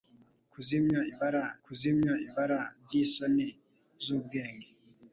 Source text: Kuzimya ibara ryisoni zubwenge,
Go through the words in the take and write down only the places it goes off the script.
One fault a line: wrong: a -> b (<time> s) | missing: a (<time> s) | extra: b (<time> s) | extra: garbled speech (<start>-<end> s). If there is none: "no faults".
extra: kuzimya ibara (1.6 s)